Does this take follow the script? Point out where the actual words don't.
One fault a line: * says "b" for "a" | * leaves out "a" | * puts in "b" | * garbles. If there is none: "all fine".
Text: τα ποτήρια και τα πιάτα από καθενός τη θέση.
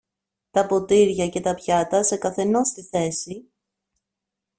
* says "σε" for "από"